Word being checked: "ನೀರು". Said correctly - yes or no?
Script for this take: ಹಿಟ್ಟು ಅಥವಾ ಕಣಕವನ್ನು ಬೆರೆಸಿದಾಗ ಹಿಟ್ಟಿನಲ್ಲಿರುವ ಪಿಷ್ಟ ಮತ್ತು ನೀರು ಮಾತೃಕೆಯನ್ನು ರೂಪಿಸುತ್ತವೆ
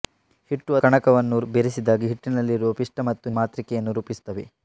no